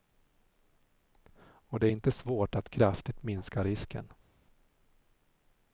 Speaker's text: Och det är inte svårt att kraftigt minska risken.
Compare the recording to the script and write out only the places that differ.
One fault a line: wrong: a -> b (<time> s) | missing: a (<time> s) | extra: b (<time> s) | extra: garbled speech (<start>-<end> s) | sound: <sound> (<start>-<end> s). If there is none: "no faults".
no faults